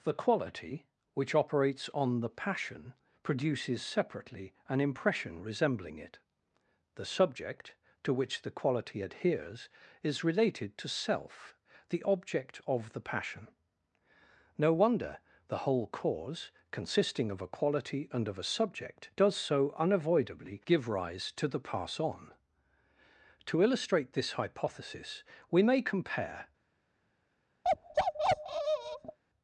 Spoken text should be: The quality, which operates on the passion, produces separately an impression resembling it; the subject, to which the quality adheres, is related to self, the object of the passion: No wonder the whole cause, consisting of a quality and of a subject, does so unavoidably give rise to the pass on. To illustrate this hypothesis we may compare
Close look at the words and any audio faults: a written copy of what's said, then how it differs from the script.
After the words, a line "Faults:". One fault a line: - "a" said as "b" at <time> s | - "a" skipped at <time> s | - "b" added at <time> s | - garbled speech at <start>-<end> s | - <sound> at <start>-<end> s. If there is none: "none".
The quality, which operates on the passion, produces separately an impression resembling it; the subject, to which the quality adheres, is related to self, the object of the passion: No wonder the whole cause, consisting of a quality and of a subject, does so unavoidably give rise to the pass on. To illustrate this hypothesis we may compare
Faults:
- bark at 27.6-29.2 s